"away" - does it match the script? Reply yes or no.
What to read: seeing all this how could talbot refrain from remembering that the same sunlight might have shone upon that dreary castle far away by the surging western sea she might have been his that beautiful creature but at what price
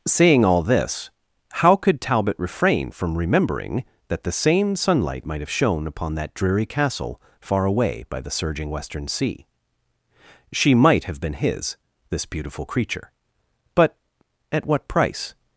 yes